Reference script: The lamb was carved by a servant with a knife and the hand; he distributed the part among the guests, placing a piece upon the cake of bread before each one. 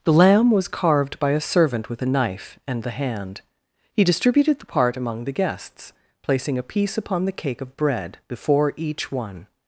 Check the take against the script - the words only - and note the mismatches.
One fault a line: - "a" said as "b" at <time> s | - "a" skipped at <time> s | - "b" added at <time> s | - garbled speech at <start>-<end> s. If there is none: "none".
none